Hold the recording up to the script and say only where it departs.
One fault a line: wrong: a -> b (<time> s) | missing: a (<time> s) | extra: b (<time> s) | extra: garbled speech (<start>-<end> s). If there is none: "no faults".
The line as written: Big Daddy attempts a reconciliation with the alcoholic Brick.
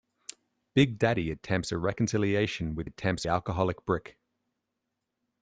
wrong: the -> attempts (2.8 s)